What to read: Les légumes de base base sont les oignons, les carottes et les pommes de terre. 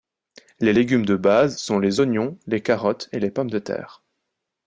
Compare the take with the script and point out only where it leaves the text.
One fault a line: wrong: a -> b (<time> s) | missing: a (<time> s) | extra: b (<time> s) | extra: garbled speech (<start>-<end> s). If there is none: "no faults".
missing: base (1.6 s)